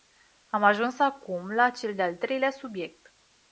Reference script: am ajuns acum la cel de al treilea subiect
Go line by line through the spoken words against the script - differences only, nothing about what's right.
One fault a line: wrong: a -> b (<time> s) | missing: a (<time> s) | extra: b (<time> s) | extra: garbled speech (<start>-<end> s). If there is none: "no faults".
no faults